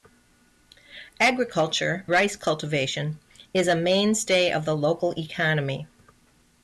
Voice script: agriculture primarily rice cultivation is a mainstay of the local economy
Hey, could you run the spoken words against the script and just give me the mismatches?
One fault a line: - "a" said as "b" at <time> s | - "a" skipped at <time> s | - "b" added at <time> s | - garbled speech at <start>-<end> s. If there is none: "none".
- "primarily" skipped at 2.1 s